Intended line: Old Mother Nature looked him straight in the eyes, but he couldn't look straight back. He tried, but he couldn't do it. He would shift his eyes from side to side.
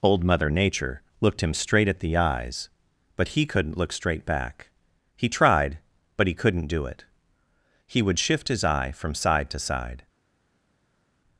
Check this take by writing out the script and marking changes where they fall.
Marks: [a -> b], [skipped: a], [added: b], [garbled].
Old Mother Nature looked him straight [in -> at] the eyes, but he couldn't look straight back. He tried, but he couldn't do it. He would shift his [eyes -> eye] from side to side.